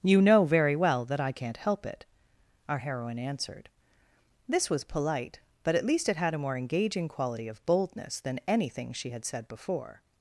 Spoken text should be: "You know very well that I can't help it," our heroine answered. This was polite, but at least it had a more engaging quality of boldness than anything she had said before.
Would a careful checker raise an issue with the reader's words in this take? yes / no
no